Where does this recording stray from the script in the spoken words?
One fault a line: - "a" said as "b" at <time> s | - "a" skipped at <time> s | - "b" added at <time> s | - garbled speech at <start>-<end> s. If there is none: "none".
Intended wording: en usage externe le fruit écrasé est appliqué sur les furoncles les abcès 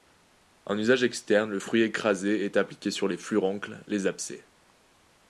none